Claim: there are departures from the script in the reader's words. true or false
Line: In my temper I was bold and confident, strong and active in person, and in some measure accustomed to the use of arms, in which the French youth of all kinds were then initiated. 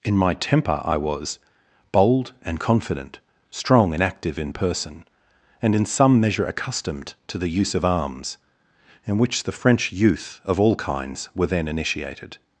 false